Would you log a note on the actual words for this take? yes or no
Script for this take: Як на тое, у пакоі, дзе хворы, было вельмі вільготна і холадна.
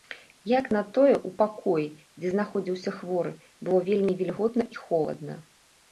yes